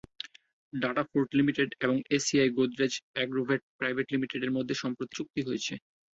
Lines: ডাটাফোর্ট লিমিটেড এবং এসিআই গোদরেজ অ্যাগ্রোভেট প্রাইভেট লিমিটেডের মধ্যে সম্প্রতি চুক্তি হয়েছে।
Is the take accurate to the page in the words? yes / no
yes